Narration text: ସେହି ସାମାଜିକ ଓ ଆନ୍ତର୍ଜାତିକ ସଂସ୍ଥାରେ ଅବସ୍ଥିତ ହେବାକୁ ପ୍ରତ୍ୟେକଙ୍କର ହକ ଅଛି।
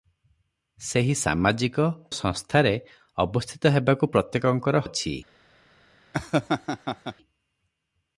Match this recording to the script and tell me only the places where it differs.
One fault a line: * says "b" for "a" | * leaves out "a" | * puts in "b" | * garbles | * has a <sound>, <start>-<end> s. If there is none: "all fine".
* leaves out "ଓ ଆନ୍ତର୍ଜାତିକ"
* leaves out "ହକ"
* has a laugh, 6.1-7.2 s